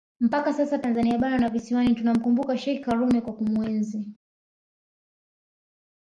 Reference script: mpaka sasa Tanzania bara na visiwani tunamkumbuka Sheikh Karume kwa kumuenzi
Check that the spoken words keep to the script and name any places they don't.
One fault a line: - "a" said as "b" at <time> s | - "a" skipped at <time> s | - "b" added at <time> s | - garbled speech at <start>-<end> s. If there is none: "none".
none